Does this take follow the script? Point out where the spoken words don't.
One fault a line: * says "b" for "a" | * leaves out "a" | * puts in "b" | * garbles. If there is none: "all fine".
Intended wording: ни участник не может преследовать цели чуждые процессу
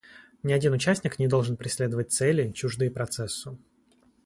* puts in "один"
* says "должен" for "может"